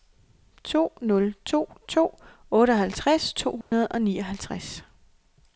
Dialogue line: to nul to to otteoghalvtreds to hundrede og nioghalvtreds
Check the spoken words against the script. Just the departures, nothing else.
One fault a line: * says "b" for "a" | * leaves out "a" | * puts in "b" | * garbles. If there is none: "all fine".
all fine